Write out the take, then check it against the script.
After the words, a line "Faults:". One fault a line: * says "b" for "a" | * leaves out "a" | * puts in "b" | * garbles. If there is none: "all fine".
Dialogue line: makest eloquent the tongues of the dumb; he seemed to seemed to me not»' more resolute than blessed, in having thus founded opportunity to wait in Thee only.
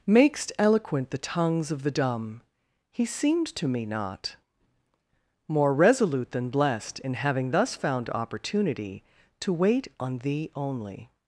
makest eloquent the tongues of the dumb; he seemed to me not»' more resolute than blessed, in having thus found opportunity to wait on Thee only.
Faults:
* leaves out "seemed to"
* says "found" for "founded"
* says "on" for "in"